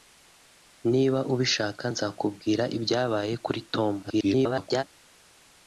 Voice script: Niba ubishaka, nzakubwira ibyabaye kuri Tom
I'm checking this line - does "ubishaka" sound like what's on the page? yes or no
yes